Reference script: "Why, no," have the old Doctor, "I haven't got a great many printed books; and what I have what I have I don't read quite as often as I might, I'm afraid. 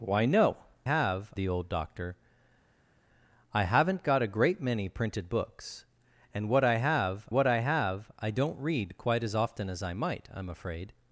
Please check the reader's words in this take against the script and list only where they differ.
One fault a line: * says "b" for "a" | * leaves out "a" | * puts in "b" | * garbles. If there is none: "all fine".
all fine